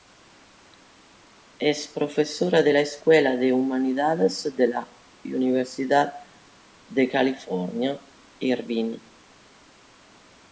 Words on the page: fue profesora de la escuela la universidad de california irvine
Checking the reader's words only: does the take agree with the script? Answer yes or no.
no